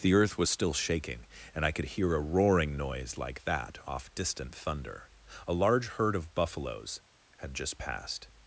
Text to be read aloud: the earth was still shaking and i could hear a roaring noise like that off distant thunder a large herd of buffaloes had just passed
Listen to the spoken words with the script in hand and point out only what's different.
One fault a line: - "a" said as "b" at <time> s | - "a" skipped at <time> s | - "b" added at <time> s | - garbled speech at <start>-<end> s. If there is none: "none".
none